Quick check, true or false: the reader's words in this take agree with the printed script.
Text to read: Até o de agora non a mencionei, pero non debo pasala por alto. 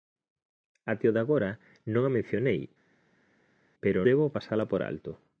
false